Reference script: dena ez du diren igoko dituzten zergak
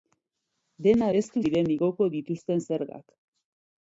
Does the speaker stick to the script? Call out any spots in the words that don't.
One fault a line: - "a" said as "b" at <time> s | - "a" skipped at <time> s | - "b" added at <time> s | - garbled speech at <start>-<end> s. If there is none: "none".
none